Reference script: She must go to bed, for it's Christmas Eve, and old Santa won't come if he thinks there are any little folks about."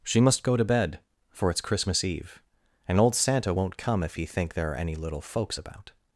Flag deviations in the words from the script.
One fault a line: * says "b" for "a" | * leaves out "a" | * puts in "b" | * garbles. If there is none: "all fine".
* says "think" for "thinks"